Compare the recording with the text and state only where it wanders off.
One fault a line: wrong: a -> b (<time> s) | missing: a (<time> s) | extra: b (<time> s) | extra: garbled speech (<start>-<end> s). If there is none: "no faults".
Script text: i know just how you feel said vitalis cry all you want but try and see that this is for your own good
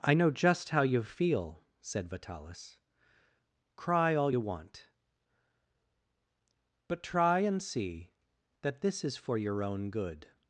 no faults